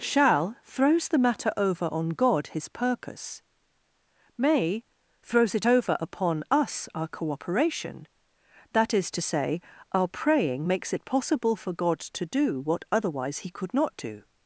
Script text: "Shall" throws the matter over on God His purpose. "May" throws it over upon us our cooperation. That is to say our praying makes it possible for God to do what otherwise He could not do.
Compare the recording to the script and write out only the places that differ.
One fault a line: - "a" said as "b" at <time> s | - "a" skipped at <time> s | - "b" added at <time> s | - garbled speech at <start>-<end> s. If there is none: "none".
none